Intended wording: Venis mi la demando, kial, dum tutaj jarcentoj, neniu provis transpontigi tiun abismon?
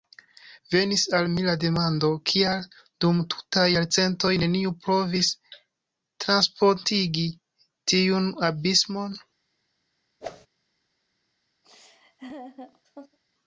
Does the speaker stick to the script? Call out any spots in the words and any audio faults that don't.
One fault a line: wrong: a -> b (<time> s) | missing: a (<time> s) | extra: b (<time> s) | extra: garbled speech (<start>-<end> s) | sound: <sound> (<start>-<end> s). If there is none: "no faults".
extra: al (1.2 s)
sound: whoosh (10.2-10.5 s)
sound: laugh (11.6-13.2 s)